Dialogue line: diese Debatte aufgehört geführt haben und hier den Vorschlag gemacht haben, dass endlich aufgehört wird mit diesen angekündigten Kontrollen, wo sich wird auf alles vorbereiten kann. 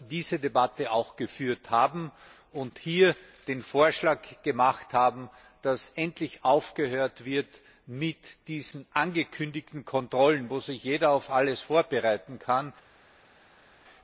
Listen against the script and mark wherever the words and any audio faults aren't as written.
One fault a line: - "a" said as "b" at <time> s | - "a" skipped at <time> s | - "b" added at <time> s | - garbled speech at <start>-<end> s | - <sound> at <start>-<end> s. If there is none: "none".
- "aufgehört" said as "auch" at 0.9 s
- "wird" said as "jeder" at 10.8 s